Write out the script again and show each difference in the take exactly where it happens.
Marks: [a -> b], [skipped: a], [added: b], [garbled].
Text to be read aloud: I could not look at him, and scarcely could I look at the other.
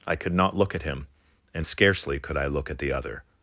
I could not look at him, and scarcely could I look at the other.